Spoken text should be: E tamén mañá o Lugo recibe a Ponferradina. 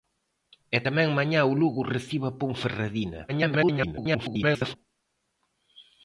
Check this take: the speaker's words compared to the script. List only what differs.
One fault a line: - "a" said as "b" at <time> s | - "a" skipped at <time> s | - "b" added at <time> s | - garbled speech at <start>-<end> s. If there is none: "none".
- garbled speech at 3.3-4.8 s